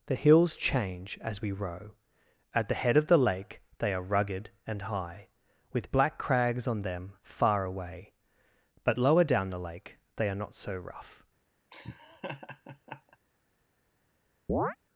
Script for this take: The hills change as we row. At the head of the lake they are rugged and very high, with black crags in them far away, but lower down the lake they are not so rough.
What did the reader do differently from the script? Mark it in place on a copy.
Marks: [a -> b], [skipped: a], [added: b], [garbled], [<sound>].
The hills change as we row. At the head of the lake they are rugged and [skipped: very] high, with black crags [in -> on] them far away, but lower down the lake they are not so rough. [laugh] [chirp]